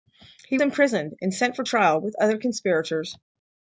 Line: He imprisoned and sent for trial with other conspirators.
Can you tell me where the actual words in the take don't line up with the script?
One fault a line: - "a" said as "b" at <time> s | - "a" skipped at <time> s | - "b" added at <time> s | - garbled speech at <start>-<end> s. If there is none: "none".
none